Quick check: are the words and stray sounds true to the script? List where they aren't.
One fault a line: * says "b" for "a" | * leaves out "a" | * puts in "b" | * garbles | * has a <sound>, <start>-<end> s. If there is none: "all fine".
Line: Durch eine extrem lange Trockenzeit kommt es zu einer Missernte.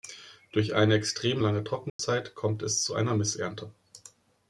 * has a dropout, 1.9-2.0 s